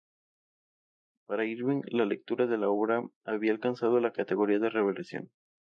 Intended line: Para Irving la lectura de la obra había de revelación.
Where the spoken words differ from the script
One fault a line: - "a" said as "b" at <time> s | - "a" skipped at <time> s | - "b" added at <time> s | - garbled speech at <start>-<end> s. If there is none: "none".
- "alcanzado la categoría" added at 3.5 s